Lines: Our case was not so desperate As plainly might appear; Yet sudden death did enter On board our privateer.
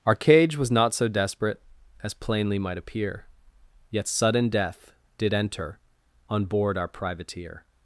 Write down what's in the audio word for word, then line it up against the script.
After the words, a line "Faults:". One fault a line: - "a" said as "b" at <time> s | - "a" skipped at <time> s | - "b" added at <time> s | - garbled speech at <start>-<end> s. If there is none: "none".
Our cage was not so desperate As plainly might appear; Yet sudden death did enter On board our privateer.
Faults:
- "case" said as "cage" at 0.1 s